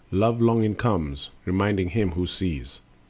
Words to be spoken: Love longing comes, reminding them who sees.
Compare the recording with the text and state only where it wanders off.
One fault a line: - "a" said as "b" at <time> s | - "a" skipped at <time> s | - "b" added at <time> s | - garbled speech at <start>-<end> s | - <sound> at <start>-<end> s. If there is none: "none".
- "them" said as "him" at 1.9 s